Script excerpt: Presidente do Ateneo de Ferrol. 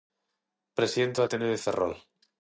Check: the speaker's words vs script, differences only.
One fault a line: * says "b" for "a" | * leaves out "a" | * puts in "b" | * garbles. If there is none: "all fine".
all fine